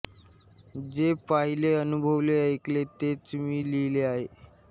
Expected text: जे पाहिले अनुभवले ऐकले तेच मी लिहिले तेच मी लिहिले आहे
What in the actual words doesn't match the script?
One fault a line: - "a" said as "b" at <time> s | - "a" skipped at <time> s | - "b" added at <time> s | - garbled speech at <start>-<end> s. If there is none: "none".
- "तेच मी लिहिले" skipped at 4.0 s